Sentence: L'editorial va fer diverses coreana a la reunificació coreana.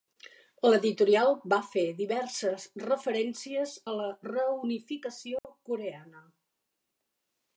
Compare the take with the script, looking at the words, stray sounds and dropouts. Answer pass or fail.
fail